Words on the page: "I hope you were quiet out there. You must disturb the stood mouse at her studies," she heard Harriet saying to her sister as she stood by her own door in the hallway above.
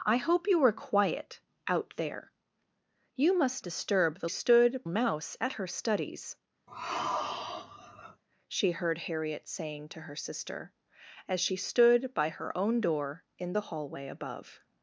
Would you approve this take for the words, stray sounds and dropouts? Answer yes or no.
no